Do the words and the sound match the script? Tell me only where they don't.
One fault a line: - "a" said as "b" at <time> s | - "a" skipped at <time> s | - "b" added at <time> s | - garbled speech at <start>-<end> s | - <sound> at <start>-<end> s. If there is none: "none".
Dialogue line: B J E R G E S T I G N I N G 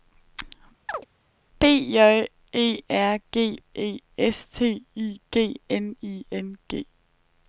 - chirp at 0.9-1.1 s